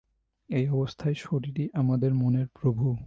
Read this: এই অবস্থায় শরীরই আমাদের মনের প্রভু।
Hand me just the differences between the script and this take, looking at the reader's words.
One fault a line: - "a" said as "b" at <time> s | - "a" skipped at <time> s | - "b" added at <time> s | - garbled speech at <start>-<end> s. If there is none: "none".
none